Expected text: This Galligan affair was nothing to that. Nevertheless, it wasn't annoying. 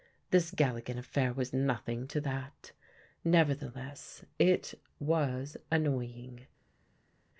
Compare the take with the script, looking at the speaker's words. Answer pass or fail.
fail